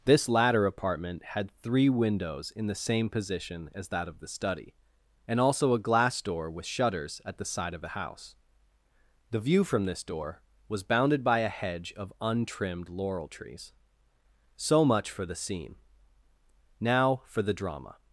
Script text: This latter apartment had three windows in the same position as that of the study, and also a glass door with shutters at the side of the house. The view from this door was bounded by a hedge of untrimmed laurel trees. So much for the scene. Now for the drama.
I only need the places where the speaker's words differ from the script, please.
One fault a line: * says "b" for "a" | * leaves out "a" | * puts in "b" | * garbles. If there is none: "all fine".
all fine